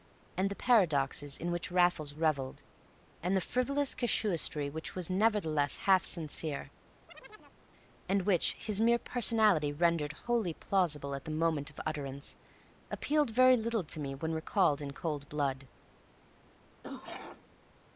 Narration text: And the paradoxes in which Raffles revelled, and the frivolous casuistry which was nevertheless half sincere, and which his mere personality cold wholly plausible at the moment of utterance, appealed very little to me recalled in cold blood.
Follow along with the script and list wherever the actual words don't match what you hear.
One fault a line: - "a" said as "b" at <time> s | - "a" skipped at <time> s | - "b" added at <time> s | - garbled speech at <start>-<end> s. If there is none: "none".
- "cold" said as "rendered" at 9.7 s
- "when" added at 14.1 s